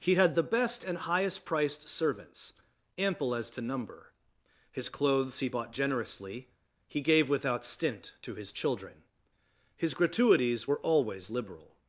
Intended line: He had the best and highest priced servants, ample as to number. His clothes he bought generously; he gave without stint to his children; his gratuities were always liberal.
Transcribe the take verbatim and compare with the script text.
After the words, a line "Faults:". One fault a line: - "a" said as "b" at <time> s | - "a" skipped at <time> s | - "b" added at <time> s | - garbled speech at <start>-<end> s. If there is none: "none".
He had the best and highest priced servants, ample as to number. His clothes he bought generously; he gave without stint to his children; his gratuities were always liberal.
Faults:
none